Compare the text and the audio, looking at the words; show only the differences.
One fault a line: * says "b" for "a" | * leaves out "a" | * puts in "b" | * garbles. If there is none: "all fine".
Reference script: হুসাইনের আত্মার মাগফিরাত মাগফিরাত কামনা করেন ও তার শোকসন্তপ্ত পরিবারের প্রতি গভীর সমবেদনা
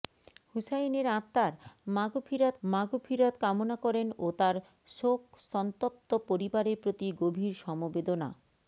all fine